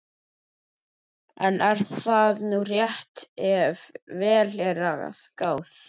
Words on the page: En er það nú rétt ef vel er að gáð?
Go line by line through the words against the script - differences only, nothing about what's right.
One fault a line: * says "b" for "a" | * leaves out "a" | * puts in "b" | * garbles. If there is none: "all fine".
all fine